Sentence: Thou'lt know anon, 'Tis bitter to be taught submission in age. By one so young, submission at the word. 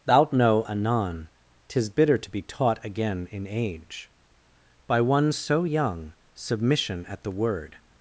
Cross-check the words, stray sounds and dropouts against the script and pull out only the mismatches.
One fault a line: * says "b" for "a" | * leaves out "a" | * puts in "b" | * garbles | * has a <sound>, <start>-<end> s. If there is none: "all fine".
* says "again" for "submission"